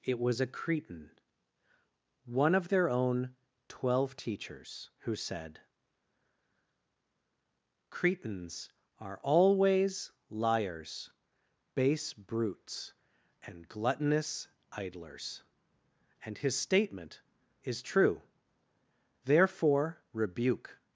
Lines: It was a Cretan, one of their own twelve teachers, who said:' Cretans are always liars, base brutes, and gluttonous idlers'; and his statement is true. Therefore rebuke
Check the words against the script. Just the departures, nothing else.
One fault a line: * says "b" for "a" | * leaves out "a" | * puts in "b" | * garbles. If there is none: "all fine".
all fine